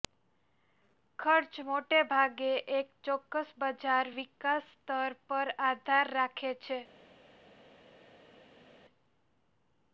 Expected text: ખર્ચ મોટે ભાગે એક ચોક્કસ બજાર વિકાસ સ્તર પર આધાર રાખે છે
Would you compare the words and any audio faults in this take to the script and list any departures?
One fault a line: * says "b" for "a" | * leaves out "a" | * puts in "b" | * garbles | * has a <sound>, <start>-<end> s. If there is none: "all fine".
all fine